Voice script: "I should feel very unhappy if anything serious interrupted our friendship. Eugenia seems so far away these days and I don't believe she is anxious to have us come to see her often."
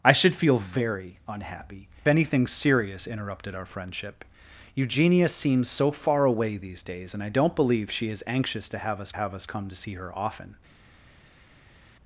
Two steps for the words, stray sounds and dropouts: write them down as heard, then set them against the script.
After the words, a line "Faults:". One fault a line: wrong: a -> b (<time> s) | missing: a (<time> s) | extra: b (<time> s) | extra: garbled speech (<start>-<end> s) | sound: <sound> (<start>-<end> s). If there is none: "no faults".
"I should feel very unhappy anything serious interrupted our friendship. Eugenia seems so far away these days and I don't believe she is anxious to have us have us come to see her often."
Faults:
missing: if (1.9 s)
extra: have us (9.1 s)